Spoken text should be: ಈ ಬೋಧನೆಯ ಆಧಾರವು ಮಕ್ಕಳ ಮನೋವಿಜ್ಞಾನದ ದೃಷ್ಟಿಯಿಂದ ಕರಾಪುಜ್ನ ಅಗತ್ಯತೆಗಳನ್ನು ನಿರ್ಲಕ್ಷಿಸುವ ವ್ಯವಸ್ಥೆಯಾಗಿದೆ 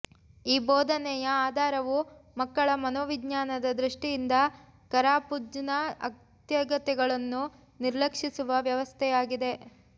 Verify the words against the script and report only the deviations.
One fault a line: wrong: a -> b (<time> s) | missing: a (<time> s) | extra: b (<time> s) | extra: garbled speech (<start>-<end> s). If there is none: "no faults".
no faults